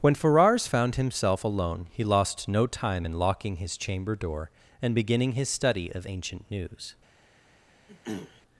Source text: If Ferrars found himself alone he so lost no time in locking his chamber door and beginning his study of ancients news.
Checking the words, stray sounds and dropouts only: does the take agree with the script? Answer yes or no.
no